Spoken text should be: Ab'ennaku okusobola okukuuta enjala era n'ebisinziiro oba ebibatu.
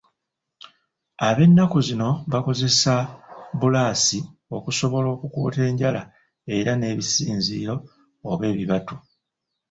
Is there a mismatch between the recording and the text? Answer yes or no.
yes